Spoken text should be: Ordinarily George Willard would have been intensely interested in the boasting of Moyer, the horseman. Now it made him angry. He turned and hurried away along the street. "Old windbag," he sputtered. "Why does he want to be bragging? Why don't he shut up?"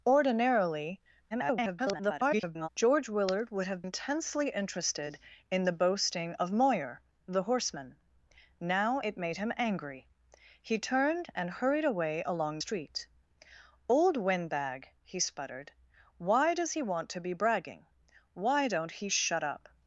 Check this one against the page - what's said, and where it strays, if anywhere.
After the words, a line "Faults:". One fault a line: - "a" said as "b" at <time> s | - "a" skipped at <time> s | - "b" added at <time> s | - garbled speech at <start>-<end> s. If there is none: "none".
Ordinarily [garbled] George Willard would have intensely interested in the boasting of Moyer, the horseman. Now it made him angry. He turned and hurried away along street. "Old windbag," he sputtered. "Why does he want to be bragging? Why don't he shut up?"
Faults:
- garbled speech at 1.3-2.7 s
- "been" skipped at 3.8 s
- "the" skipped at 12.6 s